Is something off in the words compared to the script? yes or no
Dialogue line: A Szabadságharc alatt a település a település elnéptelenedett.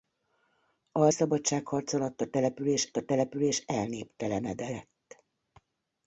no